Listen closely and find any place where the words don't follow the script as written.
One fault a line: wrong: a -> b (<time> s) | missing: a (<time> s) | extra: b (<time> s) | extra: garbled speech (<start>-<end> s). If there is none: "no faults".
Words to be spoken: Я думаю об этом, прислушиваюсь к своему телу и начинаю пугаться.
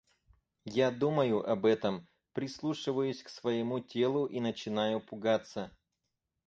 no faults